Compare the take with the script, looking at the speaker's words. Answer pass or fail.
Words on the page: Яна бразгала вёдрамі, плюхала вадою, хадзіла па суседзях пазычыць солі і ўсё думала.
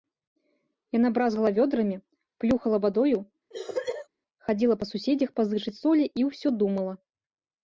pass